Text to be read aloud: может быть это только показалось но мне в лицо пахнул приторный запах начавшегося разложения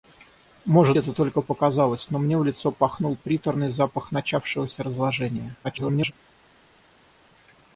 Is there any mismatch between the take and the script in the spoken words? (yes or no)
yes